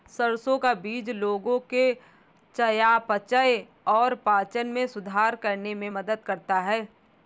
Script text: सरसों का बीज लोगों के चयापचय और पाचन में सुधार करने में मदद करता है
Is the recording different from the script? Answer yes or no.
no